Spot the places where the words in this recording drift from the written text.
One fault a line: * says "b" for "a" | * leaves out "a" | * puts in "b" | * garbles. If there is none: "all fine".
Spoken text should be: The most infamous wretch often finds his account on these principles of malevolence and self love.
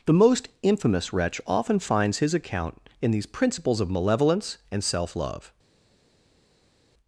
* says "in" for "on"